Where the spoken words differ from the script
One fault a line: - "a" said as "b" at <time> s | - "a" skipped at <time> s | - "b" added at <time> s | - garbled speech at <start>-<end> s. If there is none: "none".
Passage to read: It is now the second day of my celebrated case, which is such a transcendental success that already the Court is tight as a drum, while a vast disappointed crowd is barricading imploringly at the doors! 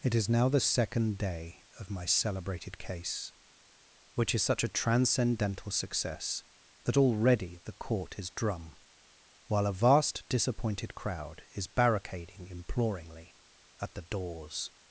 - "tight as a" skipped at 8.3 s